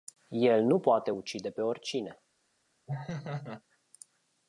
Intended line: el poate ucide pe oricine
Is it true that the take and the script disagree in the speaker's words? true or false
true